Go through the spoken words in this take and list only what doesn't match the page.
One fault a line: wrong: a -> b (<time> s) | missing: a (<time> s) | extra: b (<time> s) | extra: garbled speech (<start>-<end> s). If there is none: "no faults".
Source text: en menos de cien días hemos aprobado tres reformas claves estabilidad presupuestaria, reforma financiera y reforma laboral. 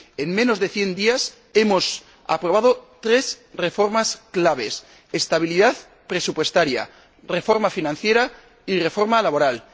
no faults